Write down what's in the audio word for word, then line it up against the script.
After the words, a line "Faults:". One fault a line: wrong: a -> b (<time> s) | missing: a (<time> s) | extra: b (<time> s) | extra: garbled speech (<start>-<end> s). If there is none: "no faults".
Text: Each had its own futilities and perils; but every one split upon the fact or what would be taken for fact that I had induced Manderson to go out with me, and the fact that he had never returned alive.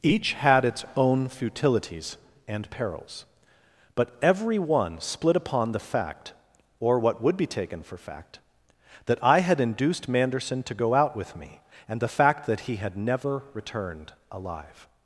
Each had its own futilities and perils; but every one split upon the fact or what would be taken for fact that I had induced Manderson to go out with me, and the fact that he had never returned alive.
Faults:
no faults